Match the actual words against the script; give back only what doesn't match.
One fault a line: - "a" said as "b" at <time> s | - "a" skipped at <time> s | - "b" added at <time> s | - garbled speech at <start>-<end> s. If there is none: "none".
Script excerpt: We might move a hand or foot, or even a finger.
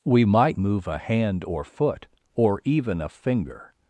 none